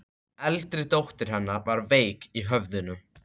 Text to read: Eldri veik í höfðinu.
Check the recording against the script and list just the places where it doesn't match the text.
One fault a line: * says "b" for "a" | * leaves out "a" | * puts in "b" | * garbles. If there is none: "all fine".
* puts in "dóttir hennar var"